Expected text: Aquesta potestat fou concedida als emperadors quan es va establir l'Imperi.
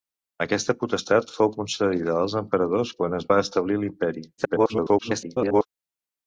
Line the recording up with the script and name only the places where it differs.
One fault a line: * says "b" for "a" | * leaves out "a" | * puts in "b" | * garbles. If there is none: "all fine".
* garbles